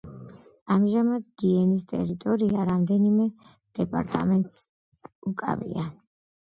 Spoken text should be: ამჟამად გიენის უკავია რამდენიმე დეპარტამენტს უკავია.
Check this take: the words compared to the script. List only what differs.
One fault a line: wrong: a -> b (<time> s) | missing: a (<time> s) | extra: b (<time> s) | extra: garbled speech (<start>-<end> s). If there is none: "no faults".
wrong: უკავია -> ტერიტორია (1.9 s)